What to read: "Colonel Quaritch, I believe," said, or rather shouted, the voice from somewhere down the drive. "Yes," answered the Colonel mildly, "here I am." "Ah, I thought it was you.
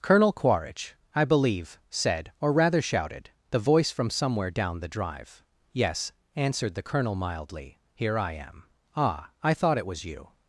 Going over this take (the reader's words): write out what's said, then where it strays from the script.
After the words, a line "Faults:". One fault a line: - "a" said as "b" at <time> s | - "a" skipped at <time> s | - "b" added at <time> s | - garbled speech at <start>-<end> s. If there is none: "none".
"Colonel Quaritch, I believe," said, or rather shouted, the voice from somewhere down the drive. "Yes," answered the Colonel mildly, "here I am." "Ah, I thought it was you.
Faults:
none